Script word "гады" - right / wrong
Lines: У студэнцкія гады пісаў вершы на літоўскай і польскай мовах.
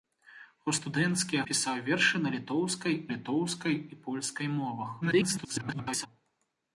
wrong